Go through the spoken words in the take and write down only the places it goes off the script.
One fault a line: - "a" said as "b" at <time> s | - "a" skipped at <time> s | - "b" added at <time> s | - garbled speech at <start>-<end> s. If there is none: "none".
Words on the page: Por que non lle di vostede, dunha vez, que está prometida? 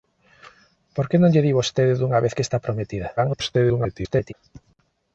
- garbled speech at 3.2-4.3 s